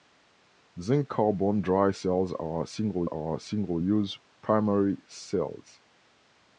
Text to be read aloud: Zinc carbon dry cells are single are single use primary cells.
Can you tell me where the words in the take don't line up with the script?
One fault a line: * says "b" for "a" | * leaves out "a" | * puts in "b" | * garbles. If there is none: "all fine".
all fine